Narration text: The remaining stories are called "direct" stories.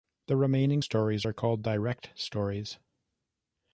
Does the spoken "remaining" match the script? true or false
true